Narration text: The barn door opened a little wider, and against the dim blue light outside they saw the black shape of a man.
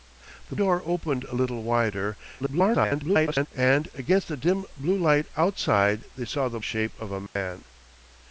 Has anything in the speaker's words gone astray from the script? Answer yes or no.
yes